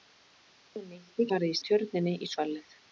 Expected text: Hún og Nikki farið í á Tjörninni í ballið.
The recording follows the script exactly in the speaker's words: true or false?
true